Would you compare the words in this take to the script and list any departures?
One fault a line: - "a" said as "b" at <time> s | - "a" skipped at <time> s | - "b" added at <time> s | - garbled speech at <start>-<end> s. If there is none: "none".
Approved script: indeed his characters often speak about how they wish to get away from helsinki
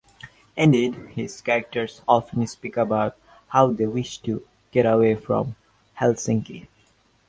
none